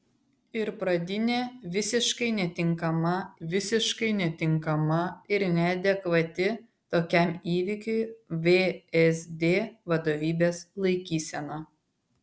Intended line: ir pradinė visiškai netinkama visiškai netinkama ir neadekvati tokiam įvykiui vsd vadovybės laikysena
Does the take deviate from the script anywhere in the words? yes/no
no